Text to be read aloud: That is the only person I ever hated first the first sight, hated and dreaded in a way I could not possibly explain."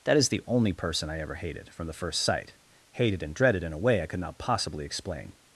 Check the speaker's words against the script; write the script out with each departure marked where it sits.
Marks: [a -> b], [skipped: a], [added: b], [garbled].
That is the only person I ever hated [first -> from] the first sight, hated and dreaded in a way I could not possibly explain."